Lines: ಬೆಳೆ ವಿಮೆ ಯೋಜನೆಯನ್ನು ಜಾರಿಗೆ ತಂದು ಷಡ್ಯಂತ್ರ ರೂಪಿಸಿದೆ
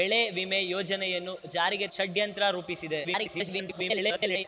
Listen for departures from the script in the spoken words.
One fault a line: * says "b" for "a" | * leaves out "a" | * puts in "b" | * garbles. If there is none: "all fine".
* leaves out "ತಂದು"
* garbles